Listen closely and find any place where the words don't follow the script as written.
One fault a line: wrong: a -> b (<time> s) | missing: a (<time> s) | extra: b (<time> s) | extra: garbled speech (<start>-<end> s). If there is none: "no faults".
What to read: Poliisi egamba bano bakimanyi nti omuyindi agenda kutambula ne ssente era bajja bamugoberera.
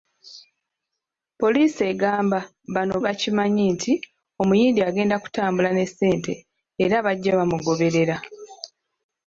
no faults